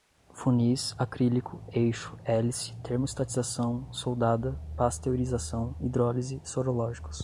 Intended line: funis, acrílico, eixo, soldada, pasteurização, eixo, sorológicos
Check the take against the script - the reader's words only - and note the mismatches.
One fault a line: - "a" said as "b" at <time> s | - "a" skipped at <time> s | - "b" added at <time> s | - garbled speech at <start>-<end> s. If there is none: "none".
- "hélice termostatização" added at 2.2 s
- "eixo" said as "hidrólise" at 5.8 s